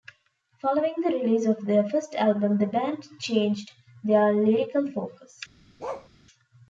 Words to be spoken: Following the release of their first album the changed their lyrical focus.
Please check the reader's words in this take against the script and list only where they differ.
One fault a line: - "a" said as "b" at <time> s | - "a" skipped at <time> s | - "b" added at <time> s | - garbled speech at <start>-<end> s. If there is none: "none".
- "band" added at 2.7 s